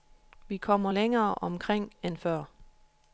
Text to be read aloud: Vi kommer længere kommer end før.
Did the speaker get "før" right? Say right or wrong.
right